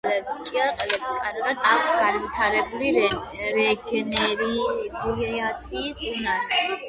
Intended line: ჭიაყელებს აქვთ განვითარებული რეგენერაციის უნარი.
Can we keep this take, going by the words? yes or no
no